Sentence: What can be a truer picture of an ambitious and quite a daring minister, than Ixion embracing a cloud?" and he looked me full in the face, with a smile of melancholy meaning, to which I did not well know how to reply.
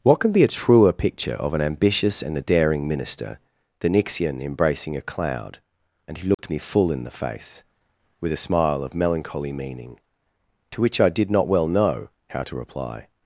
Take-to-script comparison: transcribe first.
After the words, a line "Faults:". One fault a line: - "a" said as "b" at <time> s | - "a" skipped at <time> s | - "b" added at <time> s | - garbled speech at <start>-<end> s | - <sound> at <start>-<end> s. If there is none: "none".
What can be a truer picture of an ambitious and a daring minister, than Ixion embracing a cloud?" and he looked me full in the face, with a smile of melancholy meaning, to which I did not well know how to reply.
Faults:
- "quite" skipped at 2.4 s
- dropout at 6.3-6.4 s